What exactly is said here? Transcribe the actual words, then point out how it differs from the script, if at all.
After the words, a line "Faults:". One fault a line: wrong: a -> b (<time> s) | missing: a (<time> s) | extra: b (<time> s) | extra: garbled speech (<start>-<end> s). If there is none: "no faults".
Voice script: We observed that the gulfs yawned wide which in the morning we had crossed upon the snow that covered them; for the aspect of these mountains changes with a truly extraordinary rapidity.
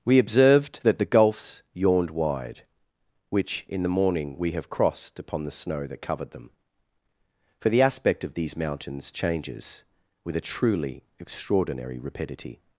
We observed that the gulfs yawned wide which in the morning we have crossed upon the snow that covered them; for the aspect of these mountains changes with a truly extraordinary rapidity.
Faults:
wrong: had -> have (4.5 s)